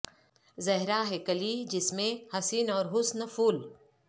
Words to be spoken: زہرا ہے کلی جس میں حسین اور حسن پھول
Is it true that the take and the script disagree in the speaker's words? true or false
false